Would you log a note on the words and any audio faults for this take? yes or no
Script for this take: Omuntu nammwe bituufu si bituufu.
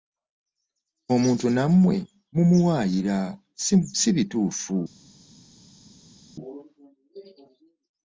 yes